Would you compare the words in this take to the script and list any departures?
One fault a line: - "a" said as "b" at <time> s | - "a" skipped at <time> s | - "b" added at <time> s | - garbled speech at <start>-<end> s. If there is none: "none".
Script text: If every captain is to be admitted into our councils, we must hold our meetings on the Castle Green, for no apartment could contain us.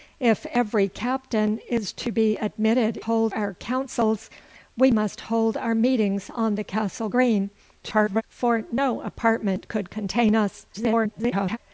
- "into" said as "hold" at 3.0 s
- garbled speech at 7.8-8.2 s
- garbled speech at 10.7-11.6 s